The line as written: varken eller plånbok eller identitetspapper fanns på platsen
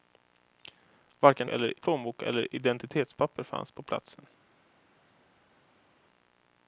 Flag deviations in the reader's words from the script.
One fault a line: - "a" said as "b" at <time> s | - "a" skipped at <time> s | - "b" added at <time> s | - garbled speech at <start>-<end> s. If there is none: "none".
none